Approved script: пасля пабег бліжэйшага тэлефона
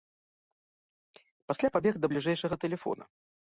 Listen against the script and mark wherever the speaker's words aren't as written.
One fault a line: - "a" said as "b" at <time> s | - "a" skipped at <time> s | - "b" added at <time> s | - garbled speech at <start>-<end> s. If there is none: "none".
- "да" added at 2.0 s